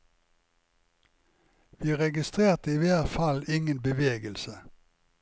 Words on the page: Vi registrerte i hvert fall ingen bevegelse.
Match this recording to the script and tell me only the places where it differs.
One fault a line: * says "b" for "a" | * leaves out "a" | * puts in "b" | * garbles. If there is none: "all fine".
all fine